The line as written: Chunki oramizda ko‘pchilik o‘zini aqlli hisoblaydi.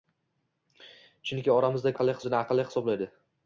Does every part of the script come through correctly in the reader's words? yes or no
no